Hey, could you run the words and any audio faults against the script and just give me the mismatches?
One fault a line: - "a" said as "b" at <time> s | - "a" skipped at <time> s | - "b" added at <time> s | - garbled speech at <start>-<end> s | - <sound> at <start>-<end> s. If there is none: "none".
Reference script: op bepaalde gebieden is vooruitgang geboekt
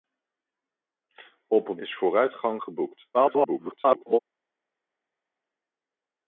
- "bepaalde gebieden" skipped at 1.8 s
- garbled speech at 3.1-4.2 s